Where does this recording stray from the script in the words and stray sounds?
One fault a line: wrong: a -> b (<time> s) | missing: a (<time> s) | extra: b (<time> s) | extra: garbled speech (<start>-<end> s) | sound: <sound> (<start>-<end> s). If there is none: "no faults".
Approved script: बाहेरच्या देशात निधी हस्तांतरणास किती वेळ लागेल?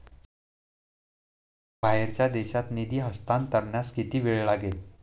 no faults